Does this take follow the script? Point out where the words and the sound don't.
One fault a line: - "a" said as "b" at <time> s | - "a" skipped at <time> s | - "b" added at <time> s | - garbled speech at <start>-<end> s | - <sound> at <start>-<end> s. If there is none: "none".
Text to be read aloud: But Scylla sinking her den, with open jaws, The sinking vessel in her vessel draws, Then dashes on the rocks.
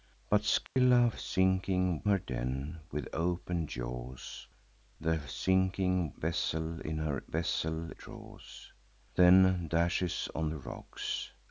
- dropout at 0.7-0.8 s